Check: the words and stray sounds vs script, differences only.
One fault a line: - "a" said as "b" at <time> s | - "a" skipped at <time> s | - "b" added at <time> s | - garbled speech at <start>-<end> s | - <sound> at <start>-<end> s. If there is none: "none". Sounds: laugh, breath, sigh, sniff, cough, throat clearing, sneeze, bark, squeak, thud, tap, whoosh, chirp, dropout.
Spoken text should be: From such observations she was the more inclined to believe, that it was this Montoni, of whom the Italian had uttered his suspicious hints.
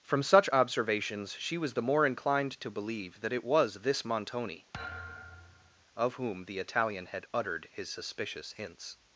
- thud at 4.7-5.9 s